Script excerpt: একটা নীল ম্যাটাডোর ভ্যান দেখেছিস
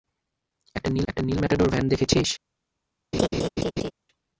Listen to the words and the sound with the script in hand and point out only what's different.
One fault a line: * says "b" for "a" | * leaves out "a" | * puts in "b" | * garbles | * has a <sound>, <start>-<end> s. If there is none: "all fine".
* puts in "একটা নীল"
* has a laugh, 3.1-3.9 s